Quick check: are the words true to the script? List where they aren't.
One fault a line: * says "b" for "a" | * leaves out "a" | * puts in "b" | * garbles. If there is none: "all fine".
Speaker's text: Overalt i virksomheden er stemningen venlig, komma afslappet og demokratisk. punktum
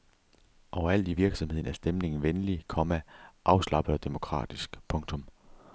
all fine